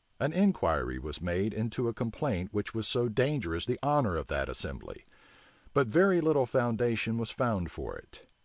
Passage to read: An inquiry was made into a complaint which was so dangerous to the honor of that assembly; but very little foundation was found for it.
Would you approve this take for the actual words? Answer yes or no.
no